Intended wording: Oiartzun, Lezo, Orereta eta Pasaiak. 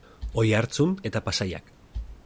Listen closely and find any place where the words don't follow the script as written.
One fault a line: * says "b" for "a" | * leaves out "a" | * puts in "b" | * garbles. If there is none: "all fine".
* leaves out "Lezo Orereta"